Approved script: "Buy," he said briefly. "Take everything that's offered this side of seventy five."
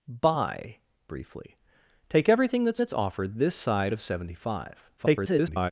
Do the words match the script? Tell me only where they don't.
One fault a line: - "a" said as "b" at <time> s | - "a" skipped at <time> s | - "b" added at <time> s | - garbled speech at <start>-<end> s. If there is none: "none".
- "he said" skipped at 0.8 s
- "that's" added at 2.8 s
- garbled speech at 5.0-5.7 s